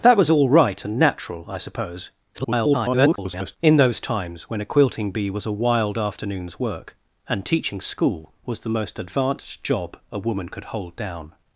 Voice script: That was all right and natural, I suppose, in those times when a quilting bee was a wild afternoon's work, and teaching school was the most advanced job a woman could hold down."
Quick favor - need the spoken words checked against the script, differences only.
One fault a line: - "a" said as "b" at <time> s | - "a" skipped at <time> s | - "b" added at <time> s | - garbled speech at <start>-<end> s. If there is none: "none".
- garbled speech at 2.3-3.6 s